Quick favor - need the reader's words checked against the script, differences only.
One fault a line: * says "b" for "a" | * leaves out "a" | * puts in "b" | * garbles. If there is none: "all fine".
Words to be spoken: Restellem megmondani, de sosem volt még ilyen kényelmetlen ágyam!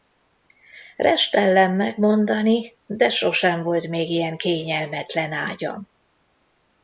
all fine